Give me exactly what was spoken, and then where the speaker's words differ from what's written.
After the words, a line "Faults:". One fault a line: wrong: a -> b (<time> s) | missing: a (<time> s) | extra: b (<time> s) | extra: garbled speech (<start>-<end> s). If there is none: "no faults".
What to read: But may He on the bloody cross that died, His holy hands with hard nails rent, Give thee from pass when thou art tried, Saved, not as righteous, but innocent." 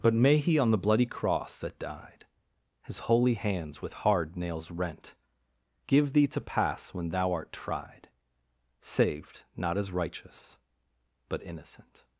But may He on the bloody cross that died, His holy hands with hard nails rent, Give thee to pass when thou art tried, Saved, not as righteous, but innocent."
Faults:
wrong: from -> to (6.3 s)